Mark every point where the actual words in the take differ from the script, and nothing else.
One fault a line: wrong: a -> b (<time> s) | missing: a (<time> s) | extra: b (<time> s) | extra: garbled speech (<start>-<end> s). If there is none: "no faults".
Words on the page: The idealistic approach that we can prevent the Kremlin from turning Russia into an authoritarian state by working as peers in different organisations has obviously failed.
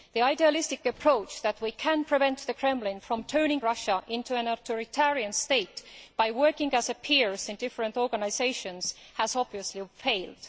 no faults